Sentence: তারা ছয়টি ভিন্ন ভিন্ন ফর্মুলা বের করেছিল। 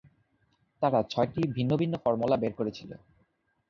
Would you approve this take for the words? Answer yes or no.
yes